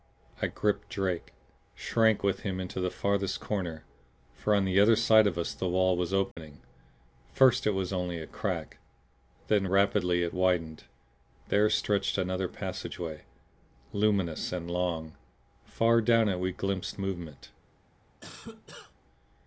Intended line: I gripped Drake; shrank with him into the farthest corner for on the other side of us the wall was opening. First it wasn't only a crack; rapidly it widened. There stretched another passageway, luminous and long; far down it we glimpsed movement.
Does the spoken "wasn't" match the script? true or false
false